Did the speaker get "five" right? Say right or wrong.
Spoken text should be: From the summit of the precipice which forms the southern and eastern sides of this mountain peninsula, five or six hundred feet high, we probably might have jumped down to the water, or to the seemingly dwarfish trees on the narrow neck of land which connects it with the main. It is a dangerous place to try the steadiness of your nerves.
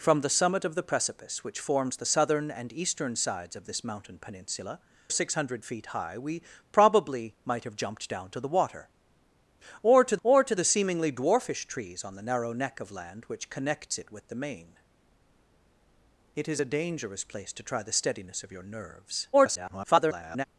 wrong